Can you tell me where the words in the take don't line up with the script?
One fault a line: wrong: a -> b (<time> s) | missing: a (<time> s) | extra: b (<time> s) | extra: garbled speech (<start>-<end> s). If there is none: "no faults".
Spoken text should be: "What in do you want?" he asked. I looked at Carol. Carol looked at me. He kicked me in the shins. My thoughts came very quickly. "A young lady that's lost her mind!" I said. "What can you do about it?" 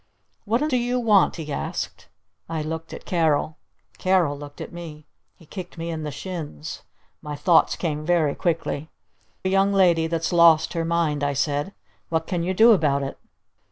no faults